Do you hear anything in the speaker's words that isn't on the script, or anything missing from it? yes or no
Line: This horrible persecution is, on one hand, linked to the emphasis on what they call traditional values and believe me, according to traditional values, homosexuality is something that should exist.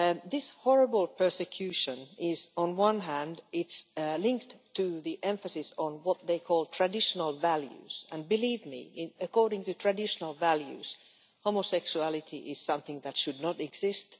yes